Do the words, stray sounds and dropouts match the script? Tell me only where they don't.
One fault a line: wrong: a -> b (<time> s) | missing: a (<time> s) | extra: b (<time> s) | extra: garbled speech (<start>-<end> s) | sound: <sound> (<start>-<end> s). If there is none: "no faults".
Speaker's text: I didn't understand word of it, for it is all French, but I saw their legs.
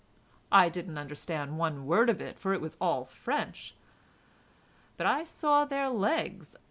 extra: one (1.6 s)
wrong: is -> was (2.6 s)